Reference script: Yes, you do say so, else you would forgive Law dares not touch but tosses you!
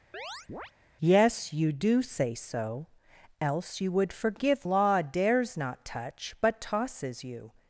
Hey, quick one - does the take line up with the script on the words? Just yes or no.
yes